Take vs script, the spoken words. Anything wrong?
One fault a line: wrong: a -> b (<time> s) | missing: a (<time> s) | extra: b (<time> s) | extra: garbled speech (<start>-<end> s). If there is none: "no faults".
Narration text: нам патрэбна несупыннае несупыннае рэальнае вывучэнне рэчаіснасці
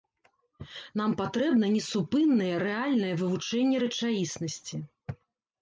missing: несупыннае (2.5 s)